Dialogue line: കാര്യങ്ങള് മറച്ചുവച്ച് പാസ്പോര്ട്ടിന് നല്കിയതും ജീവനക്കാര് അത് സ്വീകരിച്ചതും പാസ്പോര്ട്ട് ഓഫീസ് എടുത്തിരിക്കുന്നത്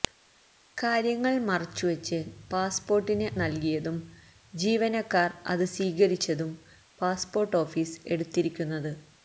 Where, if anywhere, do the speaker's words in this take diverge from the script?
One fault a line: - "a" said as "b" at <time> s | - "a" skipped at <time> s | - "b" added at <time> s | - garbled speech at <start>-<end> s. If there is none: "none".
none